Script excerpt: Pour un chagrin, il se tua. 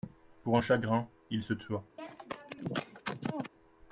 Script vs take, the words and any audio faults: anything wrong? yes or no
yes